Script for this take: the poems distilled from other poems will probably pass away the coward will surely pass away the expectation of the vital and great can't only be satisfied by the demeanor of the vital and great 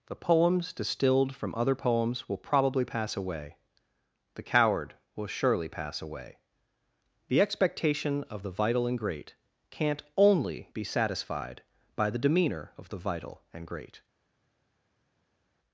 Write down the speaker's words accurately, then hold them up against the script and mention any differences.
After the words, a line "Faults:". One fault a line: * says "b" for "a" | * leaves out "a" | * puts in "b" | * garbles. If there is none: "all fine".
the poems distilled from other poems will probably pass away the coward will surely pass away the expectation of the vital and great can't only be satisfied by the demeanor of the vital and great
Faults:
all fine